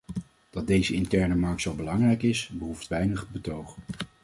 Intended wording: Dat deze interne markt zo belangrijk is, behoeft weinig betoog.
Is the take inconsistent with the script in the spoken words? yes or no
no